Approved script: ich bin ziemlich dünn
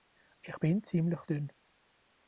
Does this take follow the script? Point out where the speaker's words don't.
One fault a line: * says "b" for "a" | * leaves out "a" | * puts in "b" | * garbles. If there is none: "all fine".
all fine